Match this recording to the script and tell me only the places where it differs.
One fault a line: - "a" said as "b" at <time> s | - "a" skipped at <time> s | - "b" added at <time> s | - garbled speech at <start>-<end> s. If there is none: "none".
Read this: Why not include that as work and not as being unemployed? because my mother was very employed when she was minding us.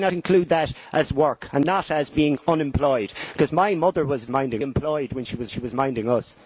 - "not" skipped at 0.1 s
- "very" said as "minding" at 4.3 s
- "she was" added at 5.5 s